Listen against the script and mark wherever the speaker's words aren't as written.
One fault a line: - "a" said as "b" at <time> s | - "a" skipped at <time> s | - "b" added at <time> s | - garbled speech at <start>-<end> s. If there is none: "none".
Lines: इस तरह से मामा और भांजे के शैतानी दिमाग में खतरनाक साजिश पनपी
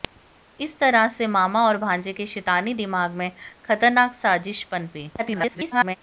- garbled speech at 5.2-6.0 s